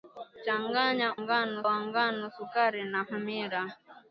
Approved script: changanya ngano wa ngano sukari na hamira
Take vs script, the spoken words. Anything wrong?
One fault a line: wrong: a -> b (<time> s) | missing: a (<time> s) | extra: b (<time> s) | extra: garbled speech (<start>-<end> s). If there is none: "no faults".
no faults